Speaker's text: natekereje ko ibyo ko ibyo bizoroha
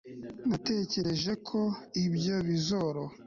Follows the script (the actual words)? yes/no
no